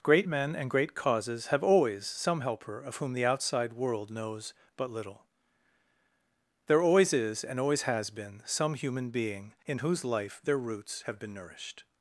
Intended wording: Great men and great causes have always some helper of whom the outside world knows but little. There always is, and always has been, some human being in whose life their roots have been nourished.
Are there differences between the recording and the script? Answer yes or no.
no